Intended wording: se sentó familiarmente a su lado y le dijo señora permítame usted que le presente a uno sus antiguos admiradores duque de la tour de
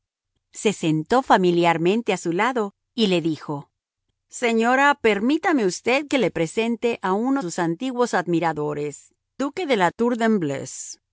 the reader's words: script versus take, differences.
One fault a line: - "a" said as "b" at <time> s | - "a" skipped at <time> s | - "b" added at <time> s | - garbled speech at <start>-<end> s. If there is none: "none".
none